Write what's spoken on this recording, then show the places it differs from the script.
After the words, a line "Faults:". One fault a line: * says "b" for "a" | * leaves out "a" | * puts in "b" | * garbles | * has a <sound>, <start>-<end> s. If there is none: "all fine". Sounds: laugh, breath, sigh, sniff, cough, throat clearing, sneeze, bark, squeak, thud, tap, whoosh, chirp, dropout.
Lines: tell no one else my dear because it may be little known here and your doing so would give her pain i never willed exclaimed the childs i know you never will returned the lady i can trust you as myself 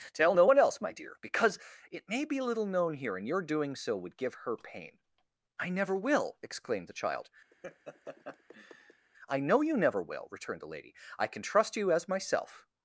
tell no one else my dear because it may be little known here and your doing so would give her pain i never will exclaimed the child i know you never will returned the lady i can trust you as myself
Faults:
* says "will" for "willed"
* says "child" for "childs"
* has a laugh, 7.5-9.1 s